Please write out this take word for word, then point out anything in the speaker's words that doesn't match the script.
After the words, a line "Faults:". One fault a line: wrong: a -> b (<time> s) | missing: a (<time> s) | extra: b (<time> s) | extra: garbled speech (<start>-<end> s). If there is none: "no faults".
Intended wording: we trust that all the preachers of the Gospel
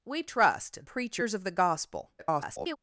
we trust preachers of the Gospel [garbled]
Faults:
missing: that all the (0.8 s)
extra: garbled speech (2.2-2.8 s)